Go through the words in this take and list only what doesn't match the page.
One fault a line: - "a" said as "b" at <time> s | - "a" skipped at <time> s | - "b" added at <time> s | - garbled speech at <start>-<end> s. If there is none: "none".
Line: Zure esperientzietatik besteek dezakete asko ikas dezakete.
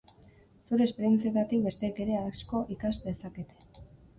- "dezakete" said as "ere" at 2.1 s